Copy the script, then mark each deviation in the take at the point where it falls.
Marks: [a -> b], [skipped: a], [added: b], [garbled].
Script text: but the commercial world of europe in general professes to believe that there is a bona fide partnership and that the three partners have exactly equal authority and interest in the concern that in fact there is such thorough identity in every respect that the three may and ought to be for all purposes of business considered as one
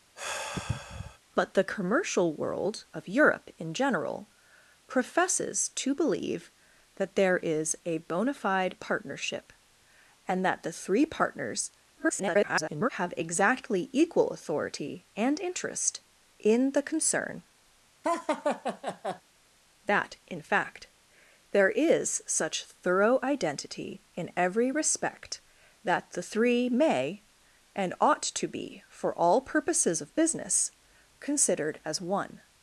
but the commercial world of europe in general professes to believe that there is a bona fide partnership and that the three partners [garbled] have exactly equal authority and interest in the concern that in fact there is such thorough identity in every respect that the three may and ought to be for all purposes of business considered as one